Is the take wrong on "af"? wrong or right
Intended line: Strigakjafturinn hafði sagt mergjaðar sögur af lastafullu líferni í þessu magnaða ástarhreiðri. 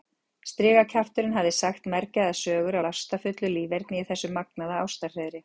wrong